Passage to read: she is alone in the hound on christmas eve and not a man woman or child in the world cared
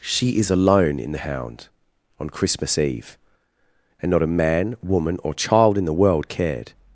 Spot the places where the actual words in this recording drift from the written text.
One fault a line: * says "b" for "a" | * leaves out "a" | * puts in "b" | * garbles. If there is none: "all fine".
all fine